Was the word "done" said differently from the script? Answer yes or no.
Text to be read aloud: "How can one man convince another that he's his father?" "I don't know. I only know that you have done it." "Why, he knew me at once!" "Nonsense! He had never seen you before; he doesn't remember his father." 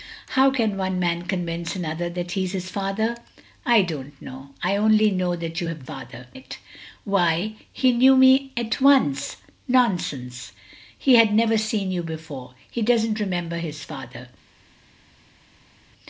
yes